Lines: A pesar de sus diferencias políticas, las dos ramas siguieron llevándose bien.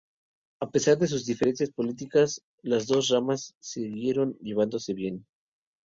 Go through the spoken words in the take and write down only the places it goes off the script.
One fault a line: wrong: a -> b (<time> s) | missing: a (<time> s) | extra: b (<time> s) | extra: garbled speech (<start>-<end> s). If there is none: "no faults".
no faults